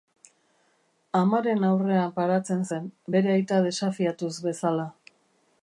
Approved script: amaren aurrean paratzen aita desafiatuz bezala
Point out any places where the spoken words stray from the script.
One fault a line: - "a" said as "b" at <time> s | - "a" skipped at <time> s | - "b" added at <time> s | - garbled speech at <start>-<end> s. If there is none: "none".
- "zen bere" added at 2.7 s